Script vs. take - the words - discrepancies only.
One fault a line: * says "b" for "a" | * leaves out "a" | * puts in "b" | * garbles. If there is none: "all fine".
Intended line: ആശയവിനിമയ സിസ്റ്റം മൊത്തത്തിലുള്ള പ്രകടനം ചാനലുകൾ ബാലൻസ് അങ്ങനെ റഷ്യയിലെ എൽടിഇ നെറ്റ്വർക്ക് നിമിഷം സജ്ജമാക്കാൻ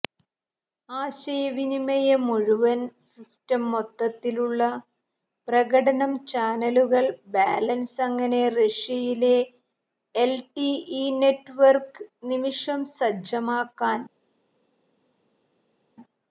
* puts in "മുഴുവൻ"